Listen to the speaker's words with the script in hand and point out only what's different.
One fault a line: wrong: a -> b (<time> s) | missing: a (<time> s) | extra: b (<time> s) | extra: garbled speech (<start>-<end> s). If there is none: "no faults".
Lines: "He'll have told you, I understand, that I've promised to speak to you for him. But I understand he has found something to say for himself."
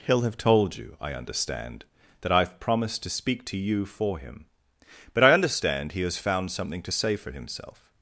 no faults